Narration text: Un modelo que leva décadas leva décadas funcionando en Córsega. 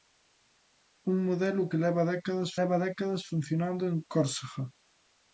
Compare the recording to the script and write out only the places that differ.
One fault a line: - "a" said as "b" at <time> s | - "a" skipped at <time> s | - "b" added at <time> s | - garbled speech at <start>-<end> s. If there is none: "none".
none